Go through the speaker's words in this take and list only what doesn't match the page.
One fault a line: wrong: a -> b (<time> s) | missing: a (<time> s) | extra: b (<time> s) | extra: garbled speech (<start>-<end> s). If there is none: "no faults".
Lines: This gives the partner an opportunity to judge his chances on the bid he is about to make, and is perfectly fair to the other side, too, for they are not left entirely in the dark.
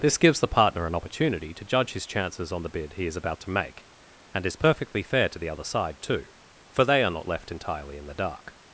no faults